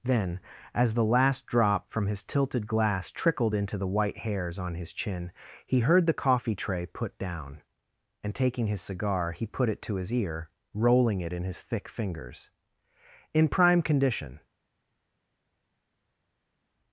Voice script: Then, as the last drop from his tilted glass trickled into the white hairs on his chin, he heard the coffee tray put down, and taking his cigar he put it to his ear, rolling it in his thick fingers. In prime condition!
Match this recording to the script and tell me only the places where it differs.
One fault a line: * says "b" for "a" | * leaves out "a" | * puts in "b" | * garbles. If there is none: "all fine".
all fine